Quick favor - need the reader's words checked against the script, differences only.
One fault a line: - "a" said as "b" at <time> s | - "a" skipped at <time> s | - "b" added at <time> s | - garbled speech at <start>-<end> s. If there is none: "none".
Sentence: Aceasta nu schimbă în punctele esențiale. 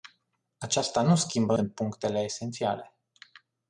none